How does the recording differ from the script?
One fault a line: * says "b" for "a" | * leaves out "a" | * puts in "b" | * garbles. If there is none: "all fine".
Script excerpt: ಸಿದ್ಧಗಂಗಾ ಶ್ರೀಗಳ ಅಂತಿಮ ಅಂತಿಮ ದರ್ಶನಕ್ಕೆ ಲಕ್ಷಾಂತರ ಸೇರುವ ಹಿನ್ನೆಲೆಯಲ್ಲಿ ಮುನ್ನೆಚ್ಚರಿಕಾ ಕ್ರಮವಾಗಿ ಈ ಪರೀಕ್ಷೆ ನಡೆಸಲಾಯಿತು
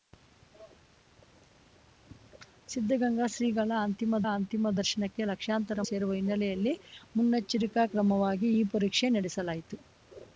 all fine